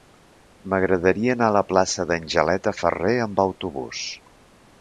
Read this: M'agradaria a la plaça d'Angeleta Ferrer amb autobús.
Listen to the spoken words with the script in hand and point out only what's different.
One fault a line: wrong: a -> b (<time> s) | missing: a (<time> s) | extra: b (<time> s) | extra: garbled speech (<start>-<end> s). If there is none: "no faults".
extra: anar (1.4 s)